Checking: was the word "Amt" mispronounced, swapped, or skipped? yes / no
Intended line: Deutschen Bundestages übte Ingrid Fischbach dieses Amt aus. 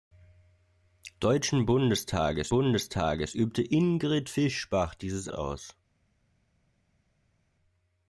yes